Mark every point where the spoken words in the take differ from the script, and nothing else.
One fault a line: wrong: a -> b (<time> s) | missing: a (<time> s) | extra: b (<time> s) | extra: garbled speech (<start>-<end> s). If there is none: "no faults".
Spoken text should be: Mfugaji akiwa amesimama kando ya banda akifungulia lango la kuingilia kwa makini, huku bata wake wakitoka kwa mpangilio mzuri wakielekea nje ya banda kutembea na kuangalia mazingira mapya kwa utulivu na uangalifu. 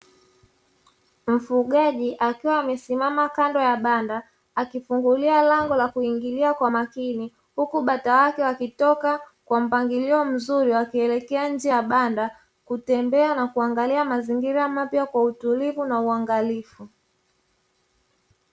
no faults